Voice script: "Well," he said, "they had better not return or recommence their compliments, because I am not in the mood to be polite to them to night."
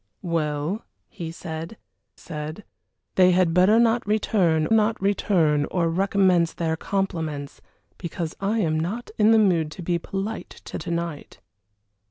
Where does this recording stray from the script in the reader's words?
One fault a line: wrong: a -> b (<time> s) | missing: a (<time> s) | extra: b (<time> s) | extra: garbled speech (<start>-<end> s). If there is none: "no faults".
extra: said (2.2 s)
extra: not return (4.7 s)
missing: them (10.8 s)